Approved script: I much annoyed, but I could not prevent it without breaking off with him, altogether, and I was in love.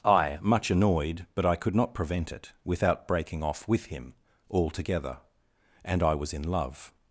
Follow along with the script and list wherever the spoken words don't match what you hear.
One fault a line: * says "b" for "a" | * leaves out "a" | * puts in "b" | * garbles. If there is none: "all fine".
all fine